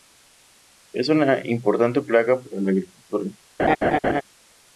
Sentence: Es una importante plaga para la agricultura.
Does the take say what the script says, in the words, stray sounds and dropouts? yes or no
no